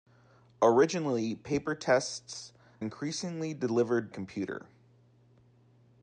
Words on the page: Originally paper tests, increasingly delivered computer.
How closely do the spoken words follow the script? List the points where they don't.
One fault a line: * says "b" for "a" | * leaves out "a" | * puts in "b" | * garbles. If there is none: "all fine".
all fine